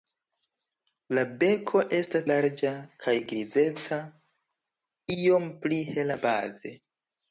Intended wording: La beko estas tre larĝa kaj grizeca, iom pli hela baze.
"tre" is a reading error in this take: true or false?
true